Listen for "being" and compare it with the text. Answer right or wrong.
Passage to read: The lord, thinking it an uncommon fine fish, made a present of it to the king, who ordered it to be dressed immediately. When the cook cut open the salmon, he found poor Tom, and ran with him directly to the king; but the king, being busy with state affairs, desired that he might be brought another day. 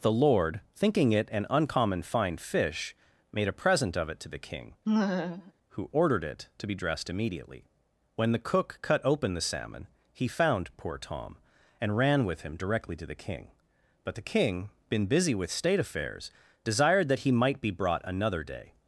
wrong